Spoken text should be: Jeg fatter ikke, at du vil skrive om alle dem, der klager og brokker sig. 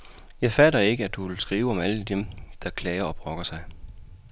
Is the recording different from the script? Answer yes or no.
no